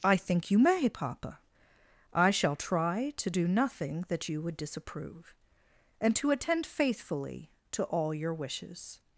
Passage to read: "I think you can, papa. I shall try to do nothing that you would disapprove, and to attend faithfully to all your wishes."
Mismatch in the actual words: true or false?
true